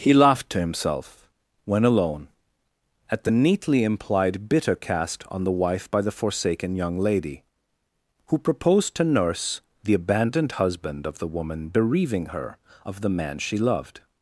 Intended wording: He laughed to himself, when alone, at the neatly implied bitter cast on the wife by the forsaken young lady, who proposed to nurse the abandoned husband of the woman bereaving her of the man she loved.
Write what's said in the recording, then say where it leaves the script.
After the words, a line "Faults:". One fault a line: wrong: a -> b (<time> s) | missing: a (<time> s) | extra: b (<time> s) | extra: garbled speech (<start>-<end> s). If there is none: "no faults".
He laughed to himself, when alone, at the neatly implied bitter cast on the wife by the forsaken young lady, who proposed to nurse the abandoned husband of the woman bereaving her of the man she loved.
Faults:
no faults